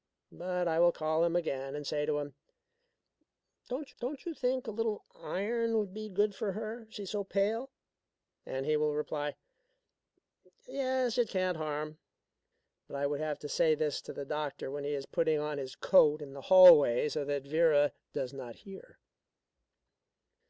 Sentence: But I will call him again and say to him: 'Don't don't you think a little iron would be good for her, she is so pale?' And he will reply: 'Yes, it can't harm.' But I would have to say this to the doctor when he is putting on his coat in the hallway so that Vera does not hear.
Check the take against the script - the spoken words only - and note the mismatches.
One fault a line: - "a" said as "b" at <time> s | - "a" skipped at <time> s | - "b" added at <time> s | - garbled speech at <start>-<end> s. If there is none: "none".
none